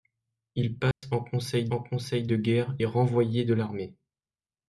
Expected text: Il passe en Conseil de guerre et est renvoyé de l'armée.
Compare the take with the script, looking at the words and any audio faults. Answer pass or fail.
fail